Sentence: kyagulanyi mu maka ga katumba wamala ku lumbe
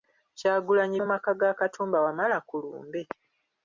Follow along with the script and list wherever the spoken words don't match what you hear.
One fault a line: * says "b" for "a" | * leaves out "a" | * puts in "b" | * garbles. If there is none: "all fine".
all fine